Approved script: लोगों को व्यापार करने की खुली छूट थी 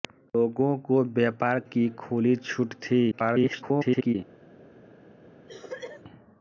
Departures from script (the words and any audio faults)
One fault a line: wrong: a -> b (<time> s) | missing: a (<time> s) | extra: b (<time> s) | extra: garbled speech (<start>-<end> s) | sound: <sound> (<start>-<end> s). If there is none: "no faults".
missing: करने (1.6 s)
extra: garbled speech (3.1-4.1 s)
sound: cough (5.5-6.0 s)